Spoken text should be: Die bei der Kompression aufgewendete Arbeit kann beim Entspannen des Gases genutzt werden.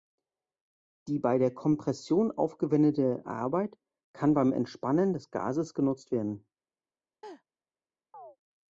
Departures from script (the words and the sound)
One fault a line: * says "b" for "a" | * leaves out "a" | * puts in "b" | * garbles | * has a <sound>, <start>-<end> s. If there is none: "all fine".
* has a laugh, 7.2-7.4 s
* has a chirp, 8.1-8.4 s